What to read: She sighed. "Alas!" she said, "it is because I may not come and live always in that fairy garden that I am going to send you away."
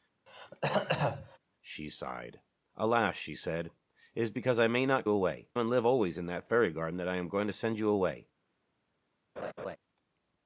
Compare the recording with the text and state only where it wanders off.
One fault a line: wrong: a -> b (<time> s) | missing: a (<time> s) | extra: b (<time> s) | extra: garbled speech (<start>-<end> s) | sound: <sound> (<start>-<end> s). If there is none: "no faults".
sound: throat clearing (0.3-1.4 s)
wrong: come -> away (5.1 s)
sound: laugh (9.4-9.8 s)